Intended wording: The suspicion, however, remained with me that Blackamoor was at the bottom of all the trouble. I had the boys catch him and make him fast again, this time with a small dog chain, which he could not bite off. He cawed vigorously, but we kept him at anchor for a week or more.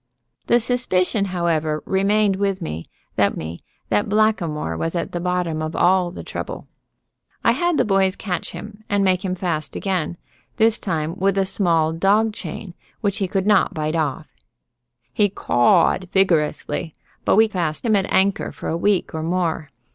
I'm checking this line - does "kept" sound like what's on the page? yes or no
no